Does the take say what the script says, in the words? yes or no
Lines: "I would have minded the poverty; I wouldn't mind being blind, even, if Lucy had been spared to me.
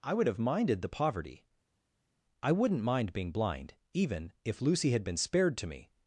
yes